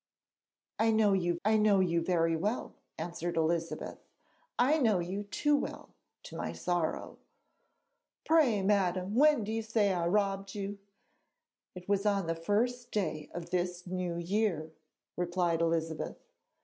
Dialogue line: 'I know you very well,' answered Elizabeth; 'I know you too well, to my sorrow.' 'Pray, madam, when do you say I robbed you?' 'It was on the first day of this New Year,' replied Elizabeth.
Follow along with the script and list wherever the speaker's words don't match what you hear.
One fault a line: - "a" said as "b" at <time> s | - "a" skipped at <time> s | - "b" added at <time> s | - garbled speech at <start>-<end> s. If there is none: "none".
- "I know you" added at 1.4 s